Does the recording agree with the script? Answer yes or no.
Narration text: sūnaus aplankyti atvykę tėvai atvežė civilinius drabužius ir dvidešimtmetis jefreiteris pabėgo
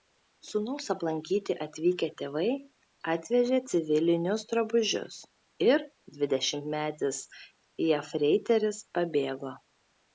yes